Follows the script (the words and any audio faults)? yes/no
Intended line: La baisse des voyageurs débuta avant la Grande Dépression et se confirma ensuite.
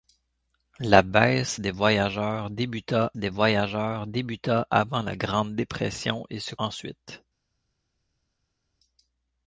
no